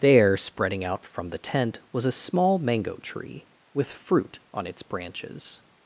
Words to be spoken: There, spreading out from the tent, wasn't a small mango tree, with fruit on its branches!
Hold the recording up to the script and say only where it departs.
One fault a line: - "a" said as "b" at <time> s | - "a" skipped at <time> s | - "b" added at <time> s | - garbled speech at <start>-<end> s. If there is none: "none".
- "wasn't" said as "was" at 1.9 s